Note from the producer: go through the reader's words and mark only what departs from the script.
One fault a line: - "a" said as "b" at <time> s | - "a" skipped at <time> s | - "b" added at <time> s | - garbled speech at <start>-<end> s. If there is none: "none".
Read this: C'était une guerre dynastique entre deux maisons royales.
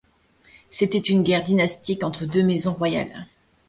none